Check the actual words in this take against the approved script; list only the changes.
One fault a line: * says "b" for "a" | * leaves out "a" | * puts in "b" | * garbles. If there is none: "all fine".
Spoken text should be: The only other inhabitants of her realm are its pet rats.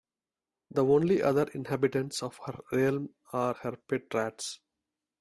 * says "her" for "its"